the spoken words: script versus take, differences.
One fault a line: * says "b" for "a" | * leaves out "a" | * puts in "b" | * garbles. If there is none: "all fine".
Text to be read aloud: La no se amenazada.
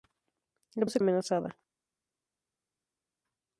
all fine